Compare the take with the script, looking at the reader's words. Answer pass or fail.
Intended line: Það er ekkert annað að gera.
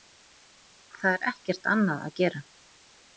pass